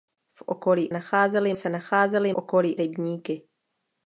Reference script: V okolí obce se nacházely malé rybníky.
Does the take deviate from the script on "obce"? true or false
true